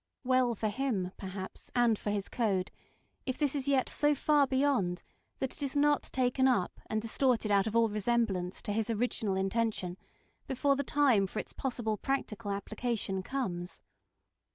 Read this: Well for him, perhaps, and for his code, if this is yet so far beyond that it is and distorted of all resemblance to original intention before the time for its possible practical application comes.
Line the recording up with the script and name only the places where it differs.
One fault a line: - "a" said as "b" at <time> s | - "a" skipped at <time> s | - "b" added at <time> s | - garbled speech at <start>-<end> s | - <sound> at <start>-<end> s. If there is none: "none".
- "not taken up" added at 5.8 s
- "out" added at 7.5 s
- "his" added at 8.7 s